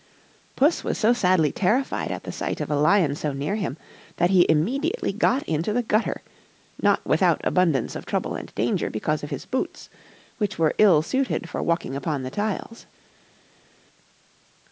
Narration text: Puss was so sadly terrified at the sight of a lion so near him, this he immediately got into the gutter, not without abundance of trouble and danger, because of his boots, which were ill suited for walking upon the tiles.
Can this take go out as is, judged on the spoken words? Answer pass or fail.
fail